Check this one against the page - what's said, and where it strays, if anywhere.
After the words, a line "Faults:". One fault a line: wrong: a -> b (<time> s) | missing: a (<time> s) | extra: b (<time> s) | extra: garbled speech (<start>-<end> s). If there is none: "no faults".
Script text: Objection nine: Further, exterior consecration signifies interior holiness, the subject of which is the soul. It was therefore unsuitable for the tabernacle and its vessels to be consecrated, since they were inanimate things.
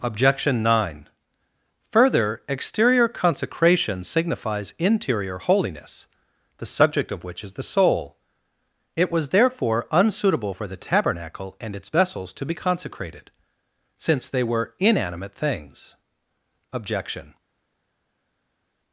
Objection nine: Further, exterior consecration signifies interior holiness, the subject of which is the soul. It was therefore unsuitable for the tabernacle and its vessels to be consecrated, since they were inanimate things. Objection
Faults:
extra: Objection (16.7 s)